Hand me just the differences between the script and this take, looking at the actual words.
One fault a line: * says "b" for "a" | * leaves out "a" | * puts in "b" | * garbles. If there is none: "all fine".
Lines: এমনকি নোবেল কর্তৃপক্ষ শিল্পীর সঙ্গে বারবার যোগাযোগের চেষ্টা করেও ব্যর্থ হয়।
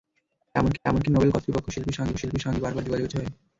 * puts in "এমনকি"
* puts in "শিল্পীর সঙ্গে"
* leaves out "চেষ্টা করেও ব্যর্থ"